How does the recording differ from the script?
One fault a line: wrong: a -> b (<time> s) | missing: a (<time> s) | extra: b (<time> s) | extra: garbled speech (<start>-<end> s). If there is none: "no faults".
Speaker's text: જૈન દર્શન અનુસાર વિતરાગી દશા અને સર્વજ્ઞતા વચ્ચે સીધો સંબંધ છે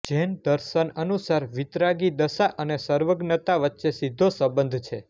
no faults